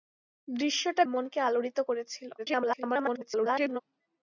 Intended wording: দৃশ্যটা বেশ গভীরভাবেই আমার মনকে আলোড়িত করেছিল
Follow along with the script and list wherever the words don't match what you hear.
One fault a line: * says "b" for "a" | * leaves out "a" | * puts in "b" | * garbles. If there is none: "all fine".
* leaves out "বেশ গভীরভাবেই আমার"
* garbles